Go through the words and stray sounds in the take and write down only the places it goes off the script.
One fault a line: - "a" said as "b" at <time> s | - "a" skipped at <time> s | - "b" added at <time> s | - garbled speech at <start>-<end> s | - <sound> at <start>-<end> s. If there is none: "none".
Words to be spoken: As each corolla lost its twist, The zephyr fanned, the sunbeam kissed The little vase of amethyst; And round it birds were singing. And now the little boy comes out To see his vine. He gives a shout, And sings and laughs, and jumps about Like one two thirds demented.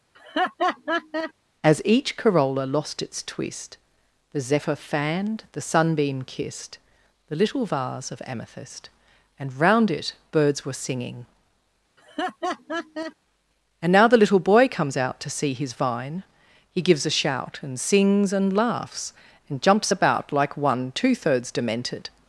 - laugh at 0.1-1.3 s
- laugh at 12.0-13.1 s